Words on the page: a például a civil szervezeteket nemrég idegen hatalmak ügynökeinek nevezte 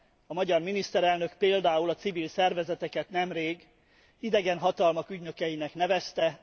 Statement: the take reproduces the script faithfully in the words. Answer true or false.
false